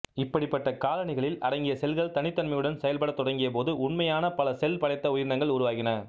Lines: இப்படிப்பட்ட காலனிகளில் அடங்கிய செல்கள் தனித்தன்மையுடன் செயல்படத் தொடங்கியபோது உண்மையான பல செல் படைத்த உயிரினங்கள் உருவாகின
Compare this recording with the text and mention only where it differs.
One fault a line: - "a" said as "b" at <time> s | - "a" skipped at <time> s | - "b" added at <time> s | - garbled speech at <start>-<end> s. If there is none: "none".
none